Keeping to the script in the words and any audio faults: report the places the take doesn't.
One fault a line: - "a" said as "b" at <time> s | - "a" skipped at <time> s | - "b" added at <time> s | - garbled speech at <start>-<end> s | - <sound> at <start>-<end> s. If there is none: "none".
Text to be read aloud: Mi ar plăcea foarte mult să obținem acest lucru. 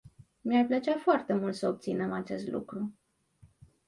none